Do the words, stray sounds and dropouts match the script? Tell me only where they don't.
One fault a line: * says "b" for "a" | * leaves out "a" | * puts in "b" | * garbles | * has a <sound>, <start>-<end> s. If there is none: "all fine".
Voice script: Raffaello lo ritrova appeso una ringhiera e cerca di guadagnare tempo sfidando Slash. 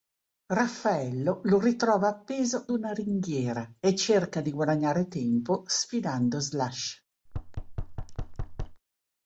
* has a thud, 7.3-8.8 s